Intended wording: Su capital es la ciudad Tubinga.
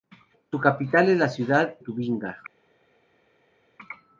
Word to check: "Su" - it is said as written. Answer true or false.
true